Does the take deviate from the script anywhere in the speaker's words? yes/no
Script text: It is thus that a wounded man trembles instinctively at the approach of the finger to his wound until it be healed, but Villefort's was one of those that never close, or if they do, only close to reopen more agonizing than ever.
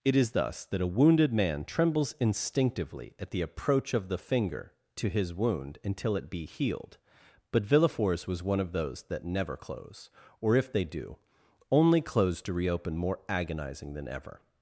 no